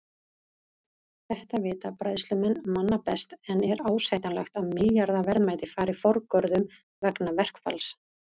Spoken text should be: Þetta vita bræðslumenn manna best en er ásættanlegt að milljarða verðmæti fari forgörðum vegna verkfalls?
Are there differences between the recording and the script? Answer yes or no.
no